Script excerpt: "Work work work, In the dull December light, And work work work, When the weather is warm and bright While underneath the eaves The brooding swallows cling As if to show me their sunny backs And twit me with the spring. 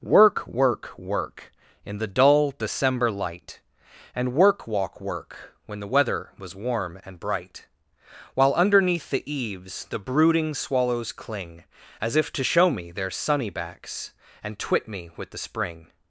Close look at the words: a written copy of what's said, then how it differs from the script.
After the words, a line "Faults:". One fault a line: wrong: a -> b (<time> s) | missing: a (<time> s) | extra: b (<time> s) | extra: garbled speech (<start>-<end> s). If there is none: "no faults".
"Work work work, In the dull December light, And work walk work, When the weather was warm and bright While underneath the eaves The brooding swallows cling As if to show me their sunny backs And twit me with the spring.
Faults:
wrong: work -> walk (4.7 s)
wrong: is -> was (6.4 s)